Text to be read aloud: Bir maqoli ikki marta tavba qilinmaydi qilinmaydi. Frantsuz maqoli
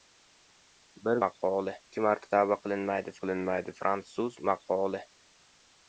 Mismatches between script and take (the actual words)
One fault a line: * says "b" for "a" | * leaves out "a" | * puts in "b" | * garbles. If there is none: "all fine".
all fine